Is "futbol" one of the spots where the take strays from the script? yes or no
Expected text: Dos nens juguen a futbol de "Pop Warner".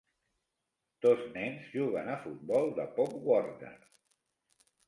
no